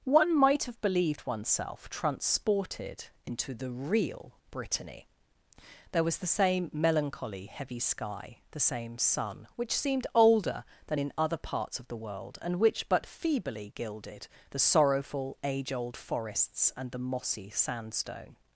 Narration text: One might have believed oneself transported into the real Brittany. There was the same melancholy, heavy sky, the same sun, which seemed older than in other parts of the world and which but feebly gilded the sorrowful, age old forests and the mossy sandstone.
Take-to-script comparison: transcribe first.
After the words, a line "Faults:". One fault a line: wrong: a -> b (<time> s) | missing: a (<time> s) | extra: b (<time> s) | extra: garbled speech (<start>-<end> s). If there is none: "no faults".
One might have believed oneself transported into the real Brittany. There was the same melancholy, heavy sky, the same sun, which seemed older than in other parts of the world and which but feebly gilded the sorrowful, age old forests and the mossy sandstone.
Faults:
no faults